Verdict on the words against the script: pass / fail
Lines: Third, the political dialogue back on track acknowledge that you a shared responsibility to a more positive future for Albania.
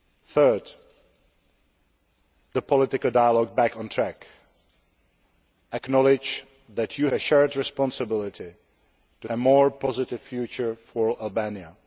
pass